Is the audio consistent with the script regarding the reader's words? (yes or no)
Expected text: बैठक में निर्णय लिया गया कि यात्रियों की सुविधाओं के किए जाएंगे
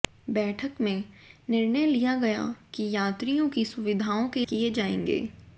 yes